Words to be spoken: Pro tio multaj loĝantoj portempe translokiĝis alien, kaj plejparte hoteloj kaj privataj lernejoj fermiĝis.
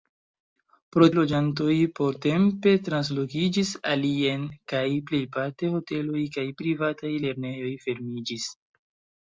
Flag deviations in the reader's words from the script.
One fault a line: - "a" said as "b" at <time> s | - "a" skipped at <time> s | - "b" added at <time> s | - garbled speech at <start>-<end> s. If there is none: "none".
- "tio multaj" skipped at 1.1 s